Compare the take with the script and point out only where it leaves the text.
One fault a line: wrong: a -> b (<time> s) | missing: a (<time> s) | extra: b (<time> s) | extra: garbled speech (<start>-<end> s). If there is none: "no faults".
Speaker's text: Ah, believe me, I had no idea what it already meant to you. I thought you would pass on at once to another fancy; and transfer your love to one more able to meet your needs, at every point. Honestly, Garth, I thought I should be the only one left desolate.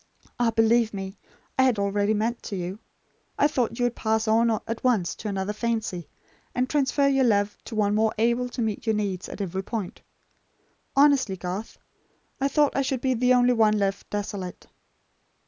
missing: no idea what (1.8 s)